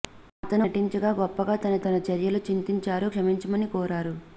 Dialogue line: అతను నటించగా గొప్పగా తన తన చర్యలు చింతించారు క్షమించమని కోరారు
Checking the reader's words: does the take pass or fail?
pass